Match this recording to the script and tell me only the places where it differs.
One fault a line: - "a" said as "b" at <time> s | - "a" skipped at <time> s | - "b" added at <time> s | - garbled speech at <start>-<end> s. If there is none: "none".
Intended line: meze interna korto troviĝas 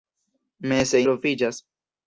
- "interna korto" skipped at 1.0 s